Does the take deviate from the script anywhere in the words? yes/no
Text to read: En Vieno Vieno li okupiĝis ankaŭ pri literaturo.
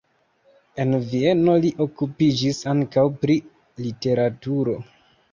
yes